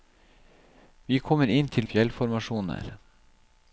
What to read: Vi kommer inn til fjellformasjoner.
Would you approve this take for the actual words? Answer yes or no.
yes